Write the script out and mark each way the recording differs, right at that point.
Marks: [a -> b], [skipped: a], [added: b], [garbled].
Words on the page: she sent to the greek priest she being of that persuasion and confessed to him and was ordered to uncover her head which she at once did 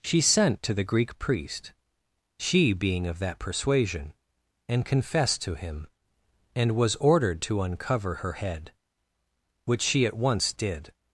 she sent to the greek priest she being of that persuasion and confessed to him and was ordered to uncover her head which she at once did